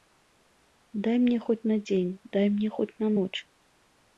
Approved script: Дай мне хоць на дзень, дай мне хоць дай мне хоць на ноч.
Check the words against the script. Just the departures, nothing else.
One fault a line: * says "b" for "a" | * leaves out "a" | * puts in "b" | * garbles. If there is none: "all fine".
* leaves out "дай мне хоць"